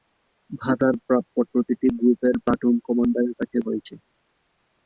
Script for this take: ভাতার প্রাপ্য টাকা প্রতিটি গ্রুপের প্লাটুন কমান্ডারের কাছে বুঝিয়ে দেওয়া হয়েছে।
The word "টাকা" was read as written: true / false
false